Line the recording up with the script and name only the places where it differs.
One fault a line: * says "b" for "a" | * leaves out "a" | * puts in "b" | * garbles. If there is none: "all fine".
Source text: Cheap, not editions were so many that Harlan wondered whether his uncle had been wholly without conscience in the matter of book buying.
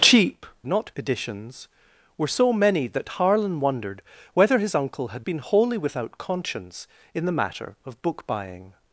all fine